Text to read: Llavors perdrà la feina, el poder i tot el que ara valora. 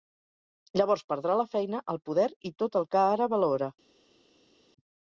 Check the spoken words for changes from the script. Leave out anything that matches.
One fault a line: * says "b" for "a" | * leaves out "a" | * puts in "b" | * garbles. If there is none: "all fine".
all fine